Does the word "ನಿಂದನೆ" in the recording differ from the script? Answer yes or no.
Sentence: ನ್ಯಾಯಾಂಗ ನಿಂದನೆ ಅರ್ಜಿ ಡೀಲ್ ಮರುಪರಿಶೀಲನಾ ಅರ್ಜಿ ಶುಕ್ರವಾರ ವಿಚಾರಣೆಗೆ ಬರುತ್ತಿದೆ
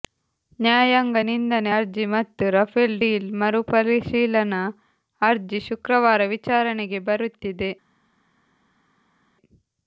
no